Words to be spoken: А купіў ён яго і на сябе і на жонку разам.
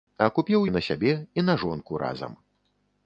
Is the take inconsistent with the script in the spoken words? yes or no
yes